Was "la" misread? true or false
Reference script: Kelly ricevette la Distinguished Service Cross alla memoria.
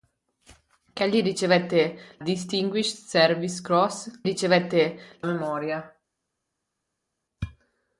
true